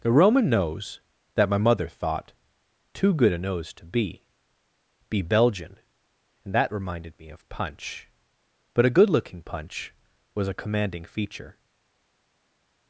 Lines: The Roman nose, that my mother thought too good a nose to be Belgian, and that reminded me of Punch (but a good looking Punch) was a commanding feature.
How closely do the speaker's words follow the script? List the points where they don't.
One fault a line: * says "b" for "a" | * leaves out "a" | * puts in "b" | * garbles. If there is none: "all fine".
* puts in "be"